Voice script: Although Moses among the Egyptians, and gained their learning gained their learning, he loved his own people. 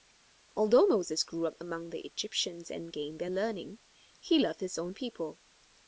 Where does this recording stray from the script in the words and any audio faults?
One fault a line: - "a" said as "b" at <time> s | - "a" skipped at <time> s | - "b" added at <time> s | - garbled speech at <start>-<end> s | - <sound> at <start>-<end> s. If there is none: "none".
- "grew up" added at 1.2 s
- "gained their learning" skipped at 3.8 s